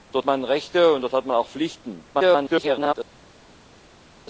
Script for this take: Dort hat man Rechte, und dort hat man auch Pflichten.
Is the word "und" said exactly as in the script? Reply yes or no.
yes